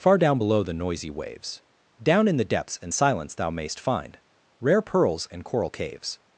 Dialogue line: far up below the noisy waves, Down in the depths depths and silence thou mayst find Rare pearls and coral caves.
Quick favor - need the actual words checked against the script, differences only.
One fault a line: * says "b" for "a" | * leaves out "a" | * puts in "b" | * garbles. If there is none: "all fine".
* says "down" for "up"
* leaves out "depths"